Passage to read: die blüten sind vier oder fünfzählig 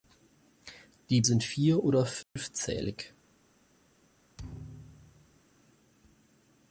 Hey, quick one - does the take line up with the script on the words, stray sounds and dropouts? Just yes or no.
no